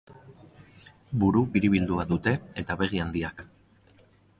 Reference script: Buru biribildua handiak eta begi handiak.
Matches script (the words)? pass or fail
fail